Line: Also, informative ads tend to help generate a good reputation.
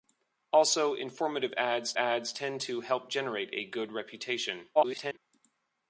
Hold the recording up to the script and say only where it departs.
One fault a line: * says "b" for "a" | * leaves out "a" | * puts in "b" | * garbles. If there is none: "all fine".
* puts in "ads"
* garbles